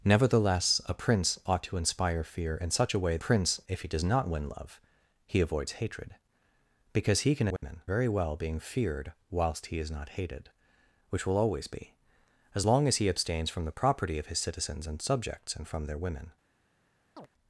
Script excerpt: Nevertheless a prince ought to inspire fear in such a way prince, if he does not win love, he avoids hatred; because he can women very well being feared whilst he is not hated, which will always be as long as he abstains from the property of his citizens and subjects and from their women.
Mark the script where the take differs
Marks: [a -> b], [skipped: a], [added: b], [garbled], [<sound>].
Nevertheless a prince ought to inspire fear in such a way prince, if he does not win love, he avoids hatred; because he can women [dropout] very well being feared whilst he is not hated, which will always be as long as he abstains from the property of his citizens and subjects and from their women. [chirp]